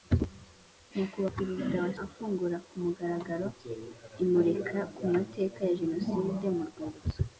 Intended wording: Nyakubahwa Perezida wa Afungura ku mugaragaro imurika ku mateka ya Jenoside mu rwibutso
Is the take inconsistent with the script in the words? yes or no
no